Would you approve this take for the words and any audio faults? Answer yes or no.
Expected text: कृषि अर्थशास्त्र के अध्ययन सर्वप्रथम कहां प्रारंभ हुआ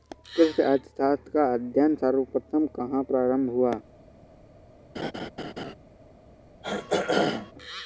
no